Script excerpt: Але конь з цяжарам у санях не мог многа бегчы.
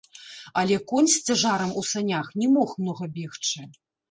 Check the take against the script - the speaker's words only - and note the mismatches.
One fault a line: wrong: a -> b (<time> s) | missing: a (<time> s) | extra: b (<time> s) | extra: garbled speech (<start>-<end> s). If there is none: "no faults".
no faults